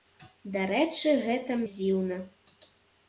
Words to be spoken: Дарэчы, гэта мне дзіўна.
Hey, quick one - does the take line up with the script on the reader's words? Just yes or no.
no